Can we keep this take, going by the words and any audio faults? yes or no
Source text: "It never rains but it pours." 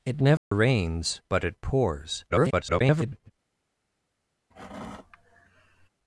no